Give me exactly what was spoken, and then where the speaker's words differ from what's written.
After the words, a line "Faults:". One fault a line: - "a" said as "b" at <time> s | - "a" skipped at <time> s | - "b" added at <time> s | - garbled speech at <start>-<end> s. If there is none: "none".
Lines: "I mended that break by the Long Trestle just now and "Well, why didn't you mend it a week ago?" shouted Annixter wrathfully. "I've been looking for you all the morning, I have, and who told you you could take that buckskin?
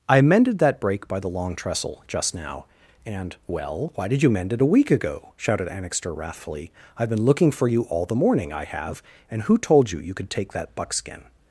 "I mended that break by the Long Trestle just now and "Well, why did you mend it a week ago?" shouted Annixter wrathfully. "I've been looking for you all the morning, I have, and who told you you could take that buckskin?
Faults:
- "didn't" said as "did" at 4.1 s